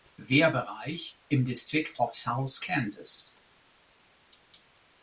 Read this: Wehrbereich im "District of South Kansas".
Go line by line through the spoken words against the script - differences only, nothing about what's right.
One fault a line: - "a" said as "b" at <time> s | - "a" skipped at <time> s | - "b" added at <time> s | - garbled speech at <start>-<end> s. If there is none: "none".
none